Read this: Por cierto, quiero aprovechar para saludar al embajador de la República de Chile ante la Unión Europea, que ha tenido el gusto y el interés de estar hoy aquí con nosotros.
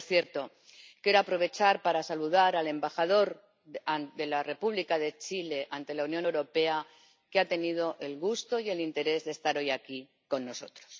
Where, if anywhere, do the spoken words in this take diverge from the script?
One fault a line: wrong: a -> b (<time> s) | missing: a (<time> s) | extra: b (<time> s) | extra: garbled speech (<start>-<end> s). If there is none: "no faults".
no faults